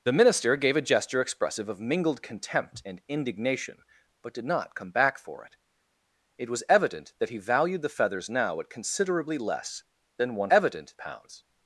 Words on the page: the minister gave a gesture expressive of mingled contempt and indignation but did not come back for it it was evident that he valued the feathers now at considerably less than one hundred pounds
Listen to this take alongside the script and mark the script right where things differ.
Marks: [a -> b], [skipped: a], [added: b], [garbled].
the minister gave a gesture expressive of mingled contempt and indignation but did not come back for it it was evident that he valued the feathers now at considerably less than one [hundred -> evident] pounds